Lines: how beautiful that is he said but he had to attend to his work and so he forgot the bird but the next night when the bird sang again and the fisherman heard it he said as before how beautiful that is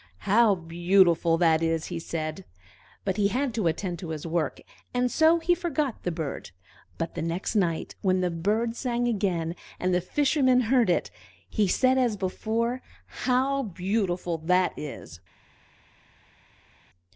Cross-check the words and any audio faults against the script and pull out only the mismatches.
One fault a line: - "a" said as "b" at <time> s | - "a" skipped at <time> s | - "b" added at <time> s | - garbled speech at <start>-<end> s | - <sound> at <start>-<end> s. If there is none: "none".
none